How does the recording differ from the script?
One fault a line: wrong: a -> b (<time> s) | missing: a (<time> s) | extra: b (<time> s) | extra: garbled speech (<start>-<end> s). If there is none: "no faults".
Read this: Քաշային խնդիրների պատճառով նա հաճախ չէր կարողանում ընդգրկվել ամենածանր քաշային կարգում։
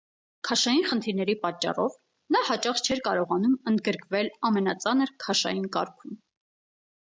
no faults